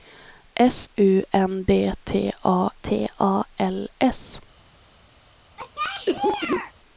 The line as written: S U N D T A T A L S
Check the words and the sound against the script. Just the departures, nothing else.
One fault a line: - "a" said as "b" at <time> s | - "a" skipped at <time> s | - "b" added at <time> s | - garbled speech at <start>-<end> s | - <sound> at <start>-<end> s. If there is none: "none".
- cough at 5.6-6.7 s